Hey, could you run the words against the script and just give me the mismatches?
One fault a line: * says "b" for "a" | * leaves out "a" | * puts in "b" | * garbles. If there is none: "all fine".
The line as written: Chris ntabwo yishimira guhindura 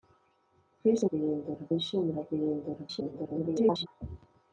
* says "guhindura" for "ntabwo"
* garbles